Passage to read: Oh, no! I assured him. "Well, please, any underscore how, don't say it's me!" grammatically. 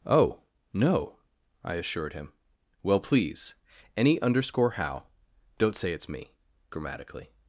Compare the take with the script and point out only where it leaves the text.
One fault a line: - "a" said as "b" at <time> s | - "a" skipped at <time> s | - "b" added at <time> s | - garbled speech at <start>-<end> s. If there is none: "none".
none